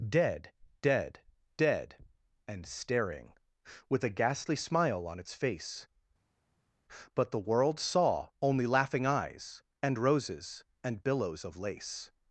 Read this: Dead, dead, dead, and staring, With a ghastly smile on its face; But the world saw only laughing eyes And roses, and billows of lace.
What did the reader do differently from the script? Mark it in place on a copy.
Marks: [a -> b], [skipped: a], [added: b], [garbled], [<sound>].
Dead, dead, dead, and staring, With a ghastly smile on its face; But the world saw only laughing eyes And roses, and billows of lace.